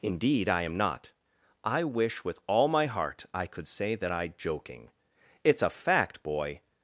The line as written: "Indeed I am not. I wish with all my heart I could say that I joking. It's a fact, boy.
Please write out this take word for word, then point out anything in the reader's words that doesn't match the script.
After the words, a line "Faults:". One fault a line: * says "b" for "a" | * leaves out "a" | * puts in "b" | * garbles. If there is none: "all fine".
"Indeed I am not. I wish with all my heart I could say that I joking. It's a fact, boy.
Faults:
all fine